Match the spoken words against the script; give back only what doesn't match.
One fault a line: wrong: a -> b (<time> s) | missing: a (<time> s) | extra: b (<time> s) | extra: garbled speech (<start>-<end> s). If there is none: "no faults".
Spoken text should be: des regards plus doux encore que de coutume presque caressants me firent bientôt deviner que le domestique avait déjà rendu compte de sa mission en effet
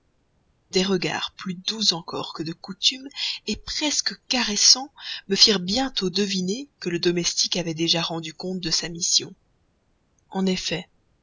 no faults